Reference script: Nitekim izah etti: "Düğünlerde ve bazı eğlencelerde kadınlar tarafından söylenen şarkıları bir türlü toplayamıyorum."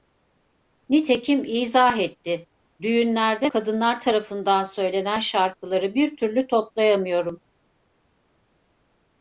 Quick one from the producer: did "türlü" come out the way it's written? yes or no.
yes